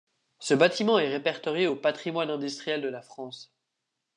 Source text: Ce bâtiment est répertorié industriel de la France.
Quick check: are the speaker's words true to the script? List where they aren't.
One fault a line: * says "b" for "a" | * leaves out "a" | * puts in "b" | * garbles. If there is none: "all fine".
* puts in "au patrimoine"